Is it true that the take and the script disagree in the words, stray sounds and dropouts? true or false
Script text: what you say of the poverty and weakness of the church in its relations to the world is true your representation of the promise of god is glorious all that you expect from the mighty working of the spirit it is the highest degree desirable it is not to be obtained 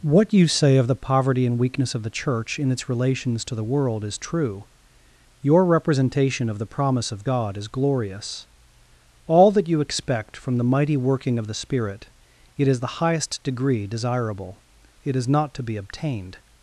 false